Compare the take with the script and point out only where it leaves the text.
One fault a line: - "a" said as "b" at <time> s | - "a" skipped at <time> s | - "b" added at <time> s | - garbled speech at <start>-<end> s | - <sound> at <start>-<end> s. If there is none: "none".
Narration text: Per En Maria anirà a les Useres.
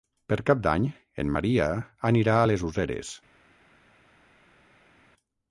- "Cap d'Any" added at 0.5 s